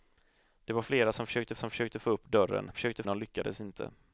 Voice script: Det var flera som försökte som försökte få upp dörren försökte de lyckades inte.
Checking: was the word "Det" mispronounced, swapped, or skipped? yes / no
no